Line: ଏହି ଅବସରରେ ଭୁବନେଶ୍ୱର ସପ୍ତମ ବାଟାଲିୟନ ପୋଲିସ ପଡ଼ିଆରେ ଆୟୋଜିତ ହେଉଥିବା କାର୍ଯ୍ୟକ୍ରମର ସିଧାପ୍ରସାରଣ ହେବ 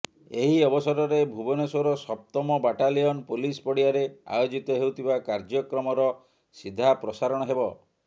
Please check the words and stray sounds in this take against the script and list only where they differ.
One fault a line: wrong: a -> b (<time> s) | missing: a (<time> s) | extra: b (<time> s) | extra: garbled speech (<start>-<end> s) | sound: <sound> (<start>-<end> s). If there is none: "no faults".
no faults